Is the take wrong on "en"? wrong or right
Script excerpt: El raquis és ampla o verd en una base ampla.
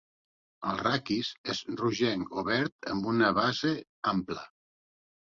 wrong